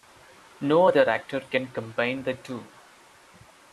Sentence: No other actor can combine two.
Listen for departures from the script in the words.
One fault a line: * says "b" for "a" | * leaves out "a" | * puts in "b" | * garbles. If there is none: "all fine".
* puts in "the"